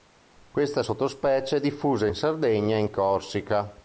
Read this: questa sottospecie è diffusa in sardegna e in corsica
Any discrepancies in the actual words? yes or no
no